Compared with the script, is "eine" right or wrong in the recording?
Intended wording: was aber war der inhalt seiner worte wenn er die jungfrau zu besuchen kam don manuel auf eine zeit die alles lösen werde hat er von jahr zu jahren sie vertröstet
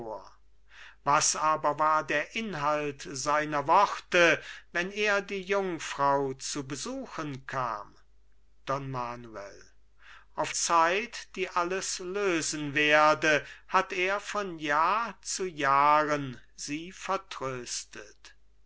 wrong